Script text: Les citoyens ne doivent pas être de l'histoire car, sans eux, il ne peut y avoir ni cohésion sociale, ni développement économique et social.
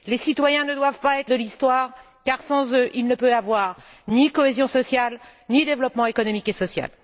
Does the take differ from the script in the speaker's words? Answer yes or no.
no